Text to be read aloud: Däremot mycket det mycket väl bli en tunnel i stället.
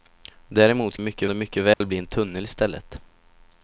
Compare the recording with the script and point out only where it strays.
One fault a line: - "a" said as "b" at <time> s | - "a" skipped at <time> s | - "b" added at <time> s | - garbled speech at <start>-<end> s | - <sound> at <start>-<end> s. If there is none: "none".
- dropout at 1.7-1.8 s